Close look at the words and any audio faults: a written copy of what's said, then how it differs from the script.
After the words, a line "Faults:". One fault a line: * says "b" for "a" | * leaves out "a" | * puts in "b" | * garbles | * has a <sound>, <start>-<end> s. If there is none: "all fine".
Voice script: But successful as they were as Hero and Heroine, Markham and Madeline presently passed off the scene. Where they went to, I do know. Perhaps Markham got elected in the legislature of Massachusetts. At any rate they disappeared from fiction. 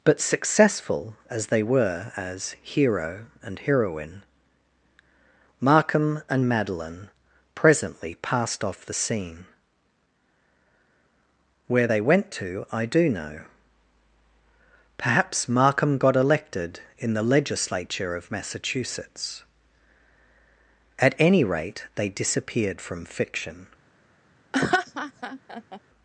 But successful as they were as Hero and Heroine, Markham and Madeline presently passed off the scene. Where they went to, I do know. Perhaps Markham got elected in the legislature of Massachusetts. At any rate they disappeared from fiction.
Faults:
* has a laugh, 24.5-25.8 s